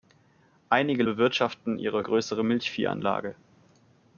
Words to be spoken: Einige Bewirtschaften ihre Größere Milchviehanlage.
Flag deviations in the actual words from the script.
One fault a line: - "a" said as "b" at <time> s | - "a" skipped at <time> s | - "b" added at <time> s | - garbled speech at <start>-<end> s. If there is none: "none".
none